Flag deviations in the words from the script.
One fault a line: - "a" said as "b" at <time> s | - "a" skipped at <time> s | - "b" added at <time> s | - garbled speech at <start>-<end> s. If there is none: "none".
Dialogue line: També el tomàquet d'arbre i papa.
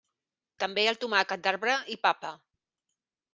none